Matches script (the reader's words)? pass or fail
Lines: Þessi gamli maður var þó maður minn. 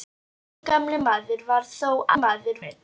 pass